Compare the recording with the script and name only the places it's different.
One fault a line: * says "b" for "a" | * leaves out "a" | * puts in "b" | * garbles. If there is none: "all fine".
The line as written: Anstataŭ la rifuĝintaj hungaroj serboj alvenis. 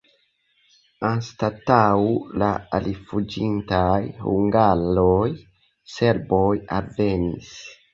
all fine